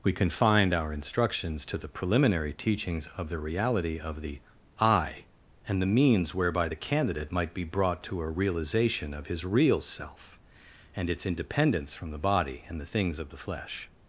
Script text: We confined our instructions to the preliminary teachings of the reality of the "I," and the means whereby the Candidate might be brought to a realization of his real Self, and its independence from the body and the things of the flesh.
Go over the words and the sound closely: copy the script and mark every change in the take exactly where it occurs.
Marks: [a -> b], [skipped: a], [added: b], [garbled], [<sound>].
We confined our instructions to the preliminary teachings of the reality of the "I," and the means whereby the Candidate might be brought to a realization of his real Self, and its independence from the body and the things of the flesh.